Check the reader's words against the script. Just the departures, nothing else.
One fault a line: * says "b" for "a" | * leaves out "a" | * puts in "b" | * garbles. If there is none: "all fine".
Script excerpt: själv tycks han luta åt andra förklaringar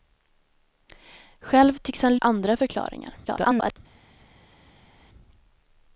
* leaves out "luta åt"
* garbles